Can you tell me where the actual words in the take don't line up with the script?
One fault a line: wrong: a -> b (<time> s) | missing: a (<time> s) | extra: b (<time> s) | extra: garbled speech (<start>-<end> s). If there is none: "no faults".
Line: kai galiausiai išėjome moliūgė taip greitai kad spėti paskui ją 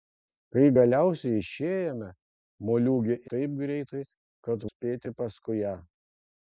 no faults